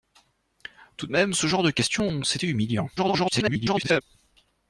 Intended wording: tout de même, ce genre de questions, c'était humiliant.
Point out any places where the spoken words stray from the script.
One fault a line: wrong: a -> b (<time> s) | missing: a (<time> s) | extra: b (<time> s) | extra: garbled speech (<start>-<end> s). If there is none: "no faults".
extra: garbled speech (3.0-4.0 s)